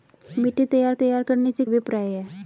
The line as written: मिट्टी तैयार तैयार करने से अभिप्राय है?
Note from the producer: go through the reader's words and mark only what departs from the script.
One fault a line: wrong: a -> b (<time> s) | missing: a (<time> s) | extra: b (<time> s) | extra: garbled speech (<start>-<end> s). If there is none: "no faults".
no faults